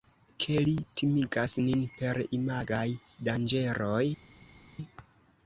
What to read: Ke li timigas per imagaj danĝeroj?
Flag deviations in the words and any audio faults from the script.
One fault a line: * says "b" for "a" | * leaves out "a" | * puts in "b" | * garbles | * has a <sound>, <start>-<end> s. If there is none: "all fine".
* puts in "nin"